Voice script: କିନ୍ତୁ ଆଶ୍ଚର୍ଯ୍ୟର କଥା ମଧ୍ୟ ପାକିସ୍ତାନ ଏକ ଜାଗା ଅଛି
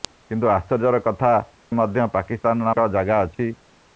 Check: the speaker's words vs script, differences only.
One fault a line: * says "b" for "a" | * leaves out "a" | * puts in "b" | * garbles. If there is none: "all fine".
all fine